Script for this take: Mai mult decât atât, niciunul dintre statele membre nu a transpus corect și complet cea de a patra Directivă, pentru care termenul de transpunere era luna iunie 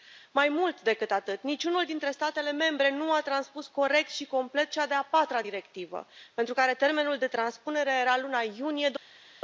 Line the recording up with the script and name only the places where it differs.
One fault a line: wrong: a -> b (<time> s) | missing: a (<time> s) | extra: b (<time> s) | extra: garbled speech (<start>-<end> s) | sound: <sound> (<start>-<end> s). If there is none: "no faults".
no faults